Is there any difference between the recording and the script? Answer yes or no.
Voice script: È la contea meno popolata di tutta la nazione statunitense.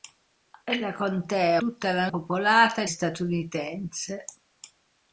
yes